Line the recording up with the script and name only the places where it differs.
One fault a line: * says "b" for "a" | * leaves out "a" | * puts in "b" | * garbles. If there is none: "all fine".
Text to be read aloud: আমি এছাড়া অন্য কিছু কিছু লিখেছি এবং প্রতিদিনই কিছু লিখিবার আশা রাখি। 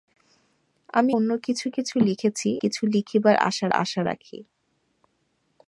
* leaves out "এছাড়া"
* leaves out "এবং প্রতিদিনই"
* puts in "আশা"